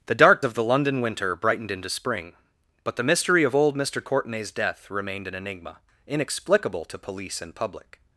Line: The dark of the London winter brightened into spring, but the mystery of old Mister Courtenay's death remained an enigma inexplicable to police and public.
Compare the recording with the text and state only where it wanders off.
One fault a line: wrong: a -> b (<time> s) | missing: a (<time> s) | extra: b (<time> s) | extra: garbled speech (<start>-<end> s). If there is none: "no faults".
no faults